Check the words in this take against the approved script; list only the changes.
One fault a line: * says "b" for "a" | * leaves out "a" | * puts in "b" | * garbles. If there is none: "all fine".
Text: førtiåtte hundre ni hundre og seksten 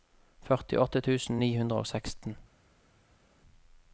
* says "tusen" for "hundre"